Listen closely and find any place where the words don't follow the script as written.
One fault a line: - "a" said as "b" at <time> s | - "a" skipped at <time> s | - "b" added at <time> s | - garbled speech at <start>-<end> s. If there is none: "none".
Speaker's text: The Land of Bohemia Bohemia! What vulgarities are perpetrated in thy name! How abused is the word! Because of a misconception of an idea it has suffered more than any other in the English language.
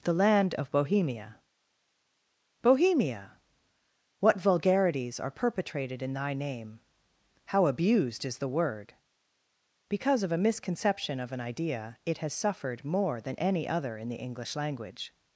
none